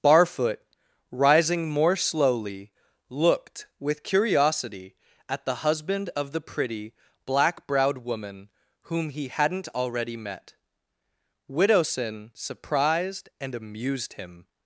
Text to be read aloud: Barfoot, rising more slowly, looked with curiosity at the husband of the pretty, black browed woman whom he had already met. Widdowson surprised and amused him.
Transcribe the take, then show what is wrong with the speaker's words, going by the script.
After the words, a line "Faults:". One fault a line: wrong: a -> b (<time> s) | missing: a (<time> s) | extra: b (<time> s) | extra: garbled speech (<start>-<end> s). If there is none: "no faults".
Barfoot, rising more slowly, looked with curiosity at the husband of the pretty, black browed woman whom he hadn't already met. Widdowson surprised and amused him.
Faults:
wrong: had -> hadn't (9.3 s)